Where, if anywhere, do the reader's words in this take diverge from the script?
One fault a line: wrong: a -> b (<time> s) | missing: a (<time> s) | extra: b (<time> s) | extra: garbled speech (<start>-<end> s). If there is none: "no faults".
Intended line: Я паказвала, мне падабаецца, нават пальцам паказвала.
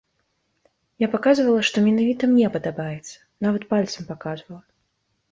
extra: што менавіта (1.7 s)